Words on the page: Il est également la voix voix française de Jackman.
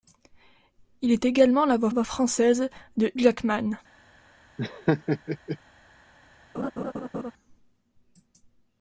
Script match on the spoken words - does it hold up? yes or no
yes